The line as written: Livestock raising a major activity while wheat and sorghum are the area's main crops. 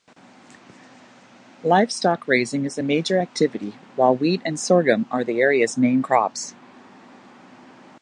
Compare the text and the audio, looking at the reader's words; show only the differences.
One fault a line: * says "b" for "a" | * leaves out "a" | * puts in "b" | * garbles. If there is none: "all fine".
* puts in "is"